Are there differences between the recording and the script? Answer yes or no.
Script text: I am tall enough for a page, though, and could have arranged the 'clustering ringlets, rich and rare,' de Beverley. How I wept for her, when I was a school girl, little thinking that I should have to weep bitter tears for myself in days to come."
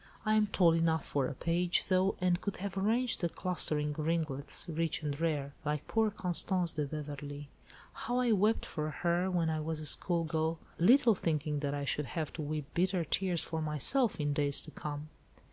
yes